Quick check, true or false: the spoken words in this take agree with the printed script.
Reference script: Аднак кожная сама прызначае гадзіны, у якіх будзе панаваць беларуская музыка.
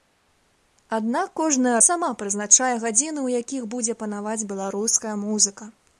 true